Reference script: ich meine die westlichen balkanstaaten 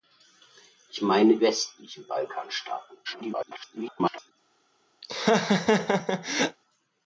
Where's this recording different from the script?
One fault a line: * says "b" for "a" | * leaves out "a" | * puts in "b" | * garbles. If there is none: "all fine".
* leaves out "die"
* garbles